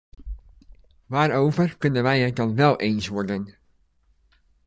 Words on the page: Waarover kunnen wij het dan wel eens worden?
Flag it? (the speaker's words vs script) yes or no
no